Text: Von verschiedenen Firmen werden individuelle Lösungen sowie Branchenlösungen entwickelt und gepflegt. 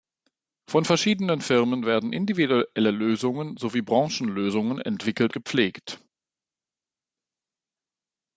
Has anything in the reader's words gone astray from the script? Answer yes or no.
yes